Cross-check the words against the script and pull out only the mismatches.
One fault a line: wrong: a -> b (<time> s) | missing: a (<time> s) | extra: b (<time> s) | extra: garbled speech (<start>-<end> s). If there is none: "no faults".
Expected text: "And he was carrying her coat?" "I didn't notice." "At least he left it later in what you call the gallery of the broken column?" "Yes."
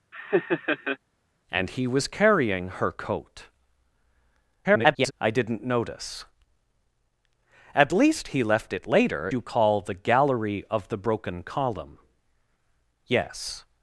extra: garbled speech (4.6-5.1 s)
missing: in what (9.3 s)